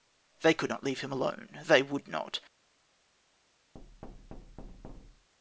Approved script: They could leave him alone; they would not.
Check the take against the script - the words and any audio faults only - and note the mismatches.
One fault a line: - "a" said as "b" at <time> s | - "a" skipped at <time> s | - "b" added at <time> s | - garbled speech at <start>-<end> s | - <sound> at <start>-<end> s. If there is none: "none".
- "not" added at 0.7 s
- thud at 3.7-5.3 s